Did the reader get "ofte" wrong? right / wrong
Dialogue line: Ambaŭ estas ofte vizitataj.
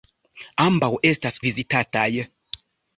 wrong